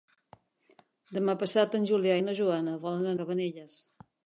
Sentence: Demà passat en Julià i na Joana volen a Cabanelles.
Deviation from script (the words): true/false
false